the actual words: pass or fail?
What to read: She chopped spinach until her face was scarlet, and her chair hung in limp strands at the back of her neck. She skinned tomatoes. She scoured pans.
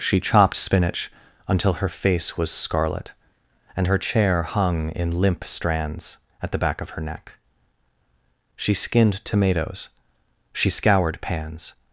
pass